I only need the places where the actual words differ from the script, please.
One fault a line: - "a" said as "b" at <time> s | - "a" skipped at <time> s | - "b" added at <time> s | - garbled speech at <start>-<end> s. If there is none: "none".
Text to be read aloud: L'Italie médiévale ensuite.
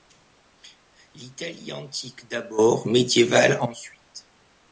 - "antique d'abord" added at 1.7 s